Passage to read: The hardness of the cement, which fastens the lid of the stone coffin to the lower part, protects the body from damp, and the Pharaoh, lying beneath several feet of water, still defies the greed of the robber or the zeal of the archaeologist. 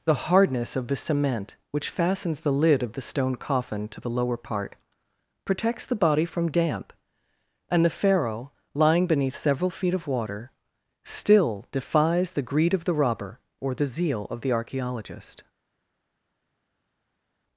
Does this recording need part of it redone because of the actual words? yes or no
no